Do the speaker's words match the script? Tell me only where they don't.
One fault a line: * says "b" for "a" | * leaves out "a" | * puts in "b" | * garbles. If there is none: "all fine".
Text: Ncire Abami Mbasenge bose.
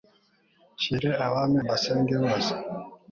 all fine